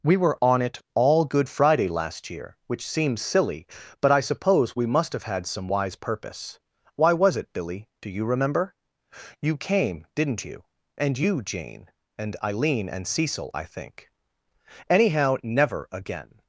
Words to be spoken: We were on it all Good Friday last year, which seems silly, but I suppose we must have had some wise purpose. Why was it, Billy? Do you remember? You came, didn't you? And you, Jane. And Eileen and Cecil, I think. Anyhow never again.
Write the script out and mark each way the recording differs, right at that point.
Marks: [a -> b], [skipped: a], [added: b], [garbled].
We were on it all Good Friday last year, which seems silly, but I suppose we must have had some wise purpose. Why was it, Billy? Do you remember? You came, didn't you? And you, Jane. And Eileen and Cecil, I think. Anyhow never again.